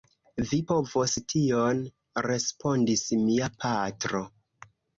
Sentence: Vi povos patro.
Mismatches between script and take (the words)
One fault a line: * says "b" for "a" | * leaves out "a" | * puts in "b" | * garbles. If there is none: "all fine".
* puts in "tion respondis mia"